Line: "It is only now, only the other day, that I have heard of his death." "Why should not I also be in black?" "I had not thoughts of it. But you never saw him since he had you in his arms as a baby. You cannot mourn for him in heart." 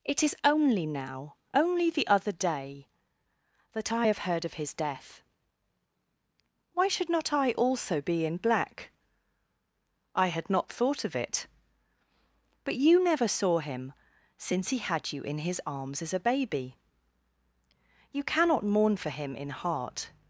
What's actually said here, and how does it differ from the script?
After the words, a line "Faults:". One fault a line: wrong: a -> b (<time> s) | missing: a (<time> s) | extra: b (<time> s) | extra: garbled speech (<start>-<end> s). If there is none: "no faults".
"It is only now, only the other day, that I have heard of his death." "Why should not I also be in black?" "I had not thought of it. But you never saw him since he had you in his arms as a baby. You cannot mourn for him in heart."
Faults:
wrong: thoughts -> thought (10.7 s)